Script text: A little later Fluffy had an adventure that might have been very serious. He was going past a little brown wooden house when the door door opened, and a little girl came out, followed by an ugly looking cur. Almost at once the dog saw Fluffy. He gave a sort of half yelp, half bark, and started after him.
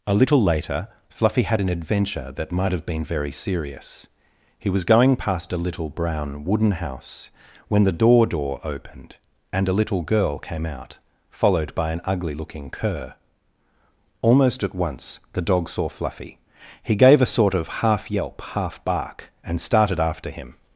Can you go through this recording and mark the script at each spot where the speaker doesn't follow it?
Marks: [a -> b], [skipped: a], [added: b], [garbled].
A little later Fluffy had an adventure that might have been very serious. He was going past a little brown wooden house when the door door opened, and a little girl came out, followed by an ugly looking cur. Almost at once the dog saw Fluffy. He gave a sort of half yelp, half bark, and started after him.